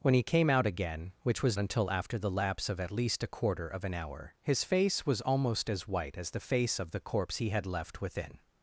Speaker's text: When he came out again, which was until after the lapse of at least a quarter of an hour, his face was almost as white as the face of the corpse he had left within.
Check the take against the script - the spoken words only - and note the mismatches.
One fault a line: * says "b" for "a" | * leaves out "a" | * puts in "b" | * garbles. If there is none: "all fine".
all fine